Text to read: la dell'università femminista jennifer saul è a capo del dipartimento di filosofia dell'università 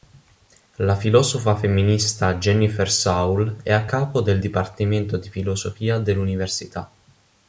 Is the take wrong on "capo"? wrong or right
right